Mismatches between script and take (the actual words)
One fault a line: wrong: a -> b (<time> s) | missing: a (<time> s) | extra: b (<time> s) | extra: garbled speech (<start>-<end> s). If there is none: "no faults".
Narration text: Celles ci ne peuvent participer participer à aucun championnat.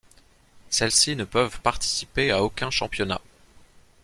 missing: participer (2.3 s)